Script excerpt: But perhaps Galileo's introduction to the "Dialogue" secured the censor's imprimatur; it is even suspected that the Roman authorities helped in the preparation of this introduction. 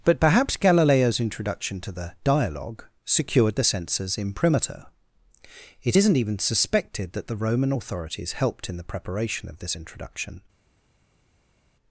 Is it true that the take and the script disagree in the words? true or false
true